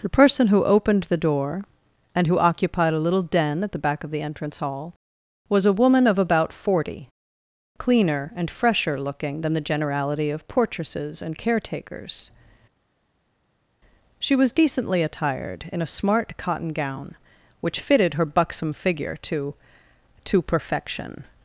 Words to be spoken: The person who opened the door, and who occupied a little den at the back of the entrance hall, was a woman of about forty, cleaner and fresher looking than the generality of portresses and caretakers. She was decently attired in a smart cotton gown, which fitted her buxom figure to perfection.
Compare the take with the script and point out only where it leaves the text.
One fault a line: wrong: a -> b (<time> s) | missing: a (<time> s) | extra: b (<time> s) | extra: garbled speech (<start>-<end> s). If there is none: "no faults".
extra: to (20.3 s)